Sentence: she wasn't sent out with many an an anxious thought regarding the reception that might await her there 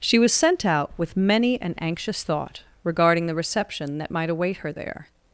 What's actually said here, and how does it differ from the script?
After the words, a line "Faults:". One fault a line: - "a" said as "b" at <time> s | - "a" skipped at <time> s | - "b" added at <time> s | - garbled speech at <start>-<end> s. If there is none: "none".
she was sent out with many an anxious thought regarding the reception that might await her there
Faults:
- "wasn't" said as "was" at 0.2 s
- "an" skipped at 1.8 s